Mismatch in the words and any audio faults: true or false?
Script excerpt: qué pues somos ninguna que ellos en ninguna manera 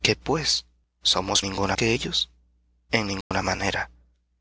true